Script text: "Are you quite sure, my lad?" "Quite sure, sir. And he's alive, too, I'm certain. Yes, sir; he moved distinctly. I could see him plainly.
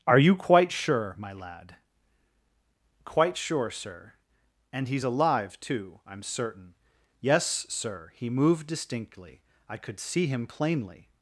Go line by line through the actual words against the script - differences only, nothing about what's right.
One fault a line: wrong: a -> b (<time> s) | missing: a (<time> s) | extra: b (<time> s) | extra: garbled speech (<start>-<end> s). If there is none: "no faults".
no faults